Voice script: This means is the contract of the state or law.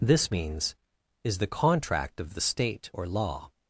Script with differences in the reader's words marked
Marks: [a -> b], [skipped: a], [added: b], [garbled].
This means is the contract of the state or law.